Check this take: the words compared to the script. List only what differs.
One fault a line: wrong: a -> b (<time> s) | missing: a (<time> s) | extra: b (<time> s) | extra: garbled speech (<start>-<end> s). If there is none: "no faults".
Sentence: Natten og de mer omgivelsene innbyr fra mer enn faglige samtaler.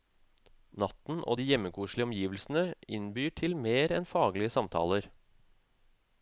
wrong: mer -> hjemmekoselige (1.5 s)
wrong: fra -> til (3.4 s)